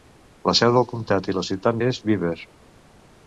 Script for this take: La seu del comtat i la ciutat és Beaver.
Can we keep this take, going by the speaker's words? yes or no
yes